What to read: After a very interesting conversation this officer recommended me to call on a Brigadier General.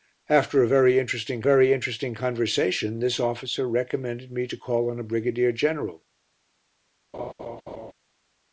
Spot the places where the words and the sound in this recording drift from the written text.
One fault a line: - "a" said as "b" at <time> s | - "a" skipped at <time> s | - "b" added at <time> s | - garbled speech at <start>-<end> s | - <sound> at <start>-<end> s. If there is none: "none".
- "very interesting" added at 1.4 s
- laugh at 7.1-7.9 s